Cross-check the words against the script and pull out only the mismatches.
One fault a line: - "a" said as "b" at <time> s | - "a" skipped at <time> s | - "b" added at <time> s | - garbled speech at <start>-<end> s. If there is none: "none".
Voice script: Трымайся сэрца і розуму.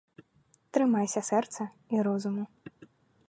none